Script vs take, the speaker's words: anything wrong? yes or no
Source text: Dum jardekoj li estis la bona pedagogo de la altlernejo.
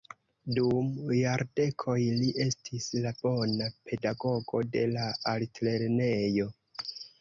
no